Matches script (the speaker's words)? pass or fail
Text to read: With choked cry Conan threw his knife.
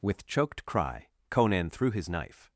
pass